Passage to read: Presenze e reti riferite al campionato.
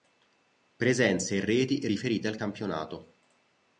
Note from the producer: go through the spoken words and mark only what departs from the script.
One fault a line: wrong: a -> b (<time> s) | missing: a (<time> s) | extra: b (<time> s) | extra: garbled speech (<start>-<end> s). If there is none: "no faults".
no faults